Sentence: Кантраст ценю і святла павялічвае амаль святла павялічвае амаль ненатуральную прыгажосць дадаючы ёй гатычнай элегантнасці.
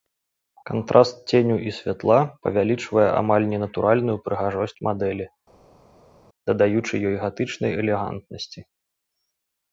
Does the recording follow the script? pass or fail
fail